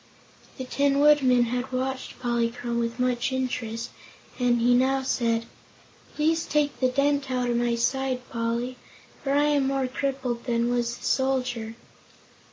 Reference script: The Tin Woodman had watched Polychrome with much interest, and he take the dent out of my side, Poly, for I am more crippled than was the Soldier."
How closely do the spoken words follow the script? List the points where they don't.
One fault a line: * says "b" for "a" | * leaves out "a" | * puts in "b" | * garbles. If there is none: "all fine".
* puts in "now said Please"